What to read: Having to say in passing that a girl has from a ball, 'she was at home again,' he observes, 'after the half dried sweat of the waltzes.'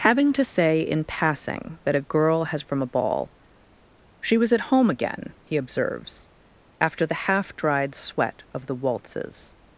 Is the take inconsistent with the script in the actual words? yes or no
no